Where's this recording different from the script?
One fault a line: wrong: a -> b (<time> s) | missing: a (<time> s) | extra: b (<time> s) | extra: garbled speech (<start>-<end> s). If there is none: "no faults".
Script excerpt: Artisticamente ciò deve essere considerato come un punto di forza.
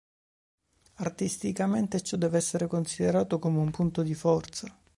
no faults